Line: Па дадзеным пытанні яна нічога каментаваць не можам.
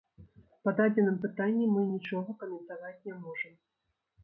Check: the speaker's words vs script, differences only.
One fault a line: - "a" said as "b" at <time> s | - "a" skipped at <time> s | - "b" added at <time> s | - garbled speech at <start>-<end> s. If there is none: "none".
- "яна" said as "мы" at 1.8 s